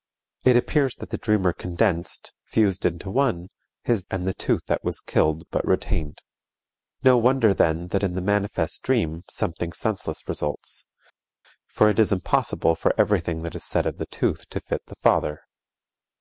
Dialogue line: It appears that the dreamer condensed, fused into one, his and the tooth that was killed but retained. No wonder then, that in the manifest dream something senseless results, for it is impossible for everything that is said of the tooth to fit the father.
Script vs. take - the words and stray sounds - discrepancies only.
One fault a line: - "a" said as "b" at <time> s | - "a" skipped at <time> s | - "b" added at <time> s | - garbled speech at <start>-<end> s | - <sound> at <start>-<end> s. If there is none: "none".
none